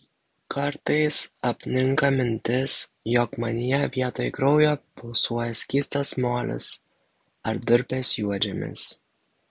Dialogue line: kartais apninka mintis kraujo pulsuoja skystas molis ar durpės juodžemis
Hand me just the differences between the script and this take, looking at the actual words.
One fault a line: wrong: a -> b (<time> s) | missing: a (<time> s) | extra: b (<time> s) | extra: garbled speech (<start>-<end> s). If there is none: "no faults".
extra: jog manyje vietoj (3.1 s)